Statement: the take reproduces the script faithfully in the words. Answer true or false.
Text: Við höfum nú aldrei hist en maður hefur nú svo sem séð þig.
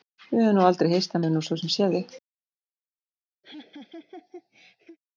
false